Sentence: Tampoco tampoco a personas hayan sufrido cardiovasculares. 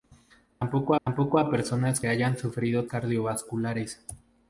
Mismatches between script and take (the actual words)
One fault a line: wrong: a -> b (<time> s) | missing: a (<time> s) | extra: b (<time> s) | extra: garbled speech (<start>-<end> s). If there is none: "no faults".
no faults